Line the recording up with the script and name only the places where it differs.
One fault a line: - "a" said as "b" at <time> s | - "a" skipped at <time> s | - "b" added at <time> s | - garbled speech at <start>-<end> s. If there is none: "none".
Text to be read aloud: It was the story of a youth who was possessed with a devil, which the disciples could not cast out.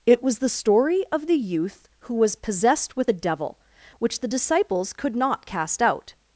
- "a" said as "the" at 1.3 s